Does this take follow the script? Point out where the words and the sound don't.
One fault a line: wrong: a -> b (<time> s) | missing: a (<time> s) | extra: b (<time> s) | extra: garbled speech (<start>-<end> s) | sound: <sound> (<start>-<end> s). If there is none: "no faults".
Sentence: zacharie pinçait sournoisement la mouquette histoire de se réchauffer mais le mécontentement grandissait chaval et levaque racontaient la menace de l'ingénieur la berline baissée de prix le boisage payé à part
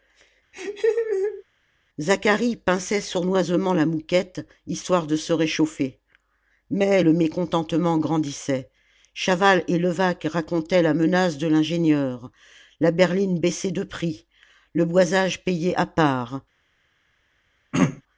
sound: laugh (0.5-1.4 s)
sound: throat clearing (17.7-18.0 s)